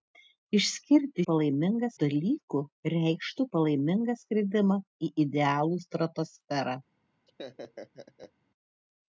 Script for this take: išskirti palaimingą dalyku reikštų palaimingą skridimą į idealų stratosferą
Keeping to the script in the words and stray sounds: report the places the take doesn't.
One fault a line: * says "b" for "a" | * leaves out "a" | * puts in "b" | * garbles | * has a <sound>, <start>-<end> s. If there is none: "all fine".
* has a laugh, 7.3-8.3 s